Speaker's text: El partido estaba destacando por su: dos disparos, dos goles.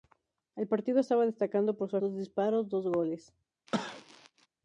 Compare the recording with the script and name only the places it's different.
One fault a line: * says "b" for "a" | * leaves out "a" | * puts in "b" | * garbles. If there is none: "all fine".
all fine